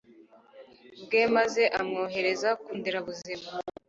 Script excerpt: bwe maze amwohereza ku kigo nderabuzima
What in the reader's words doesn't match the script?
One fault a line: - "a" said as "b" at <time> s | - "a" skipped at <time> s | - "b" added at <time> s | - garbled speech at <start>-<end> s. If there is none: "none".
- "kigo" skipped at 2.7 s